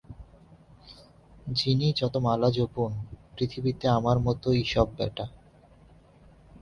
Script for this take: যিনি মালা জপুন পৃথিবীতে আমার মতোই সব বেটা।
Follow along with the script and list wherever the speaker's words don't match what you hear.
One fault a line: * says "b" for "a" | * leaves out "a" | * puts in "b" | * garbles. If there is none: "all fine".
* puts in "যত"